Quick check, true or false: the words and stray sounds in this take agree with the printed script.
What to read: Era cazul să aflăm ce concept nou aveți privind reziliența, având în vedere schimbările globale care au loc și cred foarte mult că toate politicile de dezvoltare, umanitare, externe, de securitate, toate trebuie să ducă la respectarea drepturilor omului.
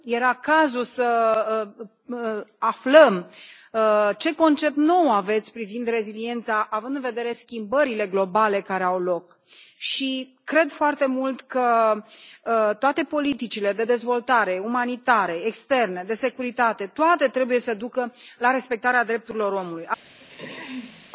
false